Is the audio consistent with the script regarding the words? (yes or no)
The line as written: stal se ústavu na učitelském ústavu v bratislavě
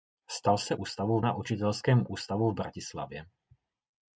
yes